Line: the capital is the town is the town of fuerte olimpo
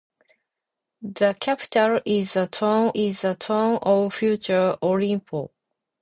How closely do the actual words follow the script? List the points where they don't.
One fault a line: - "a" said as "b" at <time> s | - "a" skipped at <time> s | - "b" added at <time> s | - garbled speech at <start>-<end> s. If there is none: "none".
none